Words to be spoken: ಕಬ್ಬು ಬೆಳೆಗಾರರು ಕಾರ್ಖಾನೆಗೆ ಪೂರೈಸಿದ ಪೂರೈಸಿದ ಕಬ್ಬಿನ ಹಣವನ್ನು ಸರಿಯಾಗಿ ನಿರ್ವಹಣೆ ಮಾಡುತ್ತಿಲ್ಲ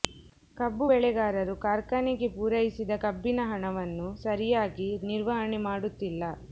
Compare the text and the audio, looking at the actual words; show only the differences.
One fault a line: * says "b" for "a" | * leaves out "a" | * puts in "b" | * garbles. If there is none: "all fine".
* leaves out "ಪೂರೈಸಿದ"